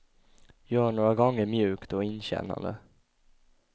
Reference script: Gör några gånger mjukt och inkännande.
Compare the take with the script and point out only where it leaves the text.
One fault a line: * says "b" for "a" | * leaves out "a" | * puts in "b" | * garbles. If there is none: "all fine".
all fine